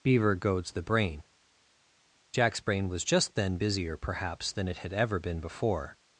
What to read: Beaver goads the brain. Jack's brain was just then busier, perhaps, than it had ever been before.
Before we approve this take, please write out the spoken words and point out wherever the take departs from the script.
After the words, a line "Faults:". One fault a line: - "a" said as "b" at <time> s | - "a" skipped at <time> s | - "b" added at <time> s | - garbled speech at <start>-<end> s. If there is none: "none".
Beaver goads the brain. Jack's brain was just then busier, perhaps, than it had ever been before.
Faults:
none